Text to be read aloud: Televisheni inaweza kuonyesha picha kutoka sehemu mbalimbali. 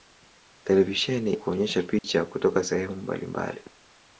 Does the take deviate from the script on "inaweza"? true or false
true